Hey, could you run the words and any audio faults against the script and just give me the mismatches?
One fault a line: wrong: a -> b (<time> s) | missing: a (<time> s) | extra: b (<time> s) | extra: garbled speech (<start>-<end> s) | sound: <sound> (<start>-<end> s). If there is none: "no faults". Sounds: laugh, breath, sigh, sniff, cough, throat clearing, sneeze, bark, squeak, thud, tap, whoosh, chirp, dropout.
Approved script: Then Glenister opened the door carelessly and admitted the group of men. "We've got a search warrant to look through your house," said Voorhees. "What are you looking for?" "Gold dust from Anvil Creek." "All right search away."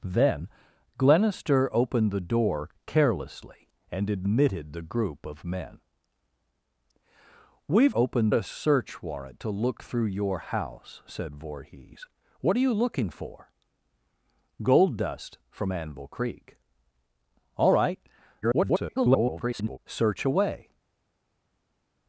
wrong: got -> opened (7.9 s)
extra: garbled speech (18.4-19.8 s)